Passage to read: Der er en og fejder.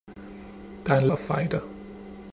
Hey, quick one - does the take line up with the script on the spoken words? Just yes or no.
yes